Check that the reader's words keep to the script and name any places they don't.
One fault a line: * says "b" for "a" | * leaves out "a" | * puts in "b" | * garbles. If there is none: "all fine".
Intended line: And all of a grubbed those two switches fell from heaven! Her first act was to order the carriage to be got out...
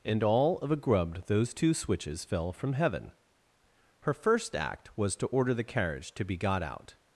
all fine